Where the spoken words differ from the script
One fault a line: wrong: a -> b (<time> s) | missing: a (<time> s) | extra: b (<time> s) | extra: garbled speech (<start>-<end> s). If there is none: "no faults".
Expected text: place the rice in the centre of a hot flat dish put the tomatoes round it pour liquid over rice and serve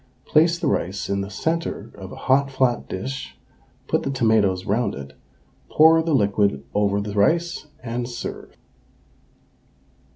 extra: the (6.0 s)
extra: the (7.0 s)